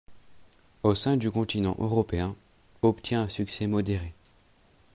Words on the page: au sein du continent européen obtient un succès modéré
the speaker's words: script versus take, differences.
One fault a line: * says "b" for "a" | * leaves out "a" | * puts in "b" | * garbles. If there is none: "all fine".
all fine